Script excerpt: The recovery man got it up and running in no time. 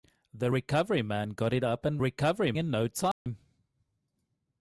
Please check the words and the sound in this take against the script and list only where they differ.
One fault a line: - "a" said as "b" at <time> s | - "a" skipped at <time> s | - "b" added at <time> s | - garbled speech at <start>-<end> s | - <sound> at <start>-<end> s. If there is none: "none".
- "running" said as "recovery" at 2.0 s
- dropout at 3.1-3.3 s